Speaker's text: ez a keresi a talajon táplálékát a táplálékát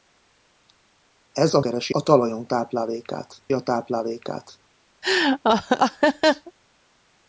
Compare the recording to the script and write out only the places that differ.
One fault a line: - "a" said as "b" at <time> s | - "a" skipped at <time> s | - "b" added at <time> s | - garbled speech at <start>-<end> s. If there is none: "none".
none